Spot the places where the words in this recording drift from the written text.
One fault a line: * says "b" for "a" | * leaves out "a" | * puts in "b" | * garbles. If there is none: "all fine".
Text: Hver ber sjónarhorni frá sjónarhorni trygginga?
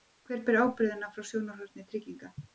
* says "ábyrgðina" for "sjónarhorni"